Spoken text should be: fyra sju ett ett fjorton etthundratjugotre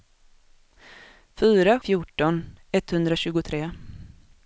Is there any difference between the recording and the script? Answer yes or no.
yes